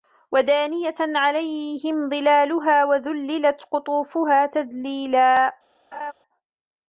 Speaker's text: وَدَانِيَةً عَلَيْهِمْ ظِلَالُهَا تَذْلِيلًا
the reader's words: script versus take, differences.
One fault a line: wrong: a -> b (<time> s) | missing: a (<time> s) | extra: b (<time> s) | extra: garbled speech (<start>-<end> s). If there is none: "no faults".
extra: وَذُلِّلَتْ قُطُوفُهَا (2.8 s)